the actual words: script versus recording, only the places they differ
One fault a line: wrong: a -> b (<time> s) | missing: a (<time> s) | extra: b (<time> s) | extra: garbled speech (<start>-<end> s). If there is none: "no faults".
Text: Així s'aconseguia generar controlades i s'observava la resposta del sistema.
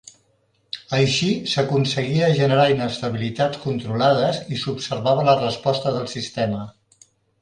extra: inestabilitats (2.8 s)